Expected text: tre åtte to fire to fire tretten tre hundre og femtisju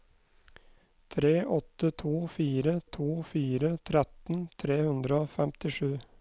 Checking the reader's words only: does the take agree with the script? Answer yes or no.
yes